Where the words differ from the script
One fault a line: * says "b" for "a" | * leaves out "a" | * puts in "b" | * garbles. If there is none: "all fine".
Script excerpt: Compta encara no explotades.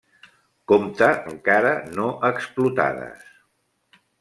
all fine